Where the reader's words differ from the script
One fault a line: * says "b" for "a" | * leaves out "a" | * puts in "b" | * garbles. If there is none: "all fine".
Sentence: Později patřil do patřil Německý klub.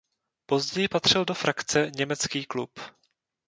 * says "frakce" for "patřil"